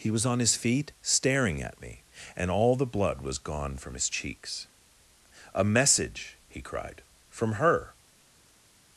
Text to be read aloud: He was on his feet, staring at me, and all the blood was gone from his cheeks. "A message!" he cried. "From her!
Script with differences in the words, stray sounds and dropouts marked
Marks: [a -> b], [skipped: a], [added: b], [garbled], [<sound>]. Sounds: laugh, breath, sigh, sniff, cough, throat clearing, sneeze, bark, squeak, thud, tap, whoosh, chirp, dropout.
He was on his feet, staring at me, and all the blood was gone from his cheeks. "A message!" he cried. "From her!